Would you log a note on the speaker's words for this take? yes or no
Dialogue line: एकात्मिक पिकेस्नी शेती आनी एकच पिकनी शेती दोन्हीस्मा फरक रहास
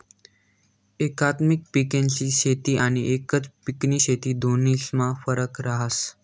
no